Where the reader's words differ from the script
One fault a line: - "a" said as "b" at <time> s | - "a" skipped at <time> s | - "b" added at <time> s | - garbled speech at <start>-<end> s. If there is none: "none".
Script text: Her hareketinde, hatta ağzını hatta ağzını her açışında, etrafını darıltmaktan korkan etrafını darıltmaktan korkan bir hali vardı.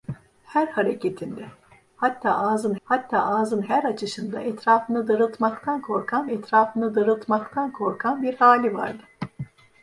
none